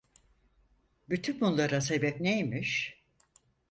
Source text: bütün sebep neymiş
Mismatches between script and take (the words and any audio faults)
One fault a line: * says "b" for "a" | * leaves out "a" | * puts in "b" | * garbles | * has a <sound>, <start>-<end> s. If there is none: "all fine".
* puts in "bunlara"